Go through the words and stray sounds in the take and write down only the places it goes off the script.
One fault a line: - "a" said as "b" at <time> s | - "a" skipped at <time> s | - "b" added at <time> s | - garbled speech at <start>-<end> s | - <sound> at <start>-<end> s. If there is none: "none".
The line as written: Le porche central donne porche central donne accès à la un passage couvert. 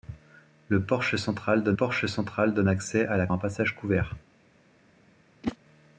- whoosh at 5.4-5.6 s